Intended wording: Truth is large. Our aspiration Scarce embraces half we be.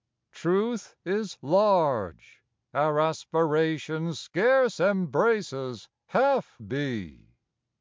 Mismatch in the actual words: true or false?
true